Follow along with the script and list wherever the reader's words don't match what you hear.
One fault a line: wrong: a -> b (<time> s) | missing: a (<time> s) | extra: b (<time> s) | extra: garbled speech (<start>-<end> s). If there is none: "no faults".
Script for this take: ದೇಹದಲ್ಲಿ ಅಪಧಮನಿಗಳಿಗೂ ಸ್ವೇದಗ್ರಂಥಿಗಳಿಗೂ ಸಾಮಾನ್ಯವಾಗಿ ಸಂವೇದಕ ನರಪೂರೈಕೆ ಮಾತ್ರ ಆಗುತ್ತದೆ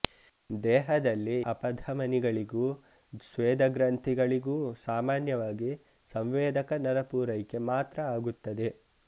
no faults